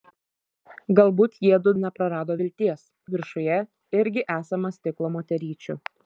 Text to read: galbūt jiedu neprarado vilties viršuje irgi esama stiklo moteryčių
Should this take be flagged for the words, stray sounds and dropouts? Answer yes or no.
no